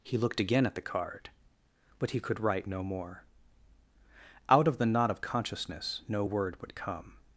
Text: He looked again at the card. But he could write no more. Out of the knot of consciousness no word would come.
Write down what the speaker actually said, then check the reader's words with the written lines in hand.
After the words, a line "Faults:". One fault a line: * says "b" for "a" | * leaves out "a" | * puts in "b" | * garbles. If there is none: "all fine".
He looked again at the card. But he could write no more. Out of the knot of consciousness no word would come.
Faults:
all fine